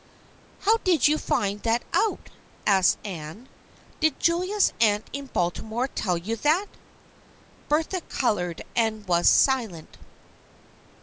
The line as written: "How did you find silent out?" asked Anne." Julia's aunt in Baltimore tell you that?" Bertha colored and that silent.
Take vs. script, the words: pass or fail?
fail